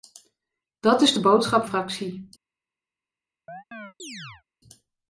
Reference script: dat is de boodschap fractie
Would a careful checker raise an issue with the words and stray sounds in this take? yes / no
yes